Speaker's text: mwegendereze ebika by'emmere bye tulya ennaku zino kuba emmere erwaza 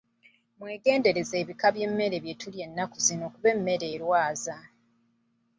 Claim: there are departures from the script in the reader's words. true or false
false